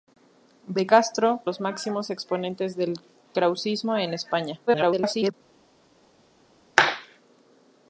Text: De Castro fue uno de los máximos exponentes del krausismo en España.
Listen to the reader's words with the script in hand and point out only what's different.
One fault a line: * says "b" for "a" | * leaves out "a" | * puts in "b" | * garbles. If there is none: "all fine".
* leaves out "fue uno de"
* garbles